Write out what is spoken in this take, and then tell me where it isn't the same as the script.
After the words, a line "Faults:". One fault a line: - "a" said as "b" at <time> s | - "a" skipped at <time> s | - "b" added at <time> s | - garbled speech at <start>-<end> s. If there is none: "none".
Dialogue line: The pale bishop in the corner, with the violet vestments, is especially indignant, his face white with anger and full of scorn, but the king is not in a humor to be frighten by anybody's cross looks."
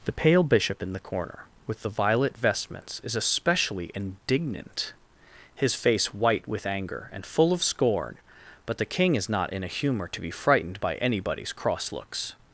The pale bishop in the corner, with the violet vestments, is especially indignant, his face white with anger and full of scorn, but the king is not in a humor to be frightened by anybody's cross looks."
Faults:
- "frighten" said as "frightened" at 10.3 s